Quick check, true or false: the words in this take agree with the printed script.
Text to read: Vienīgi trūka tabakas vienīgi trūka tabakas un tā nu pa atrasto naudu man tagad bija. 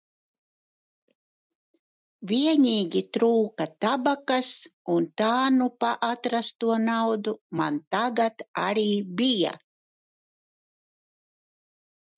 false